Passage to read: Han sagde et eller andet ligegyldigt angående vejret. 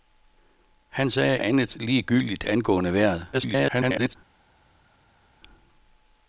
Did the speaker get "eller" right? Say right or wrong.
wrong